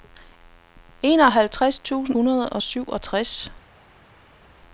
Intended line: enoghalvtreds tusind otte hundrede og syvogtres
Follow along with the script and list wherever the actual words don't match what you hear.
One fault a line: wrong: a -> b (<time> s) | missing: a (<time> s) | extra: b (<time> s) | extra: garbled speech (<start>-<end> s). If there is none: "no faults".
missing: otte (2.2 s)